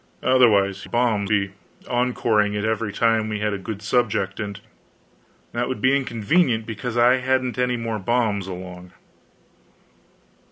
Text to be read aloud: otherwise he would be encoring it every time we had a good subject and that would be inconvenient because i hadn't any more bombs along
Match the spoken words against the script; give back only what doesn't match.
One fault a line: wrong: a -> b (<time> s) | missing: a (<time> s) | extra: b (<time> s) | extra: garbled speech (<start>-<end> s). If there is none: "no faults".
wrong: would -> bombs (0.8 s)